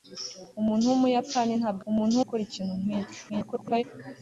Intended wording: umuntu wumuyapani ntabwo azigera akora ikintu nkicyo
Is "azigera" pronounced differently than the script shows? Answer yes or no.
yes